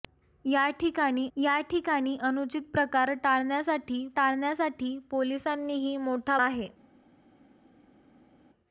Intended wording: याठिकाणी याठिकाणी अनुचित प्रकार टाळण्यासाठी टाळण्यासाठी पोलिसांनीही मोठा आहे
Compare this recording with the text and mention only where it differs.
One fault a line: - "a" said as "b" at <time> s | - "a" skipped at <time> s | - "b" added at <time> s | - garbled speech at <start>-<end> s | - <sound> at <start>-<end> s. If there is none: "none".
none